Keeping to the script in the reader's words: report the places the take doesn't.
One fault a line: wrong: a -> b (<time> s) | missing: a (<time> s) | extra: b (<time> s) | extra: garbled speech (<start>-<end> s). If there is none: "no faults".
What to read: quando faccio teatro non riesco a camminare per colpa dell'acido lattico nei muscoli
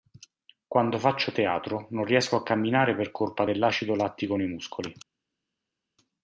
no faults